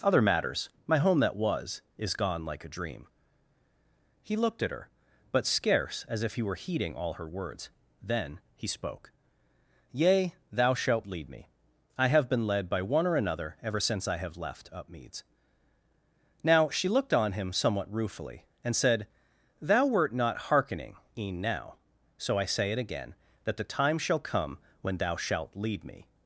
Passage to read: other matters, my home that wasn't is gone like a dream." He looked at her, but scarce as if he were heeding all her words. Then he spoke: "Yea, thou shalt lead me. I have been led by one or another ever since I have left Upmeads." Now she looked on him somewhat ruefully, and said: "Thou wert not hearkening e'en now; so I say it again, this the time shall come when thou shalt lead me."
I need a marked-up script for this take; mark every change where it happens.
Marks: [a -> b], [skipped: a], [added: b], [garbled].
other matters, my home that [wasn't -> was] is gone like a dream." He looked at her, but scarce as if he were heeding all her words. Then he spoke: "Yea, thou shalt lead me. I have been led by one or another ever since I have left Upmeads." Now she looked on him somewhat ruefully, and said: "Thou wert not hearkening e'en now; so I say it again, [this -> that] the time shall come when thou shalt lead me."